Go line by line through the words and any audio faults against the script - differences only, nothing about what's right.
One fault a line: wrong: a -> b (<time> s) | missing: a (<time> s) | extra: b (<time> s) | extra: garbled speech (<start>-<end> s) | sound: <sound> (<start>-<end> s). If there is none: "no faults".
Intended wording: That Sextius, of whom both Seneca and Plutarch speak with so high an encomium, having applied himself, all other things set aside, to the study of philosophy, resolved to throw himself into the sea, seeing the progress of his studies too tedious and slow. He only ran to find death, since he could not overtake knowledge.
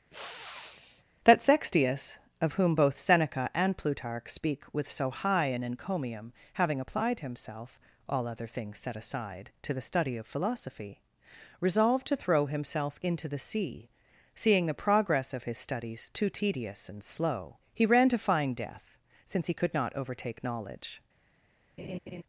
sound: sniff (0.1-1.0 s)
missing: only (17.8 s)
sound: laugh (21.8-22.2 s)